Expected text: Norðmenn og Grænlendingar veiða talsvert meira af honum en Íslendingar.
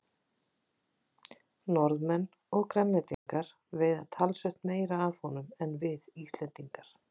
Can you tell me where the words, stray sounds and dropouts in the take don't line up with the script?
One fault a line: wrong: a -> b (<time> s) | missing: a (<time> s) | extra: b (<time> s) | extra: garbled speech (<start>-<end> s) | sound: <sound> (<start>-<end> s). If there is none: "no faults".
sound: dropout (3.1-3.3 s)
extra: við (5.8 s)